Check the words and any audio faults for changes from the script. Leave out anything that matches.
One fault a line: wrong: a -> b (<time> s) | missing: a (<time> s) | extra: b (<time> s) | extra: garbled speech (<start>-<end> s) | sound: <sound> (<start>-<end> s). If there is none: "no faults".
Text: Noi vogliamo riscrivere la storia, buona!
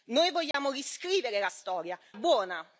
sound: dropout (0.5-0.5 s)